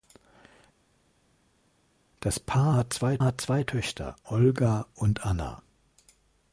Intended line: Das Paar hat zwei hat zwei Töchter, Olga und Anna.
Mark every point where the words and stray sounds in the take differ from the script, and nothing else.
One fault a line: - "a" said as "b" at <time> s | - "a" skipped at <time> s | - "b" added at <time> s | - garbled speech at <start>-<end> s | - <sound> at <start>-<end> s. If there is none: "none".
none